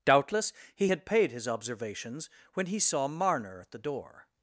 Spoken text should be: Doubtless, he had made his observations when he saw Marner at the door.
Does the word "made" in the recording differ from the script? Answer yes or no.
yes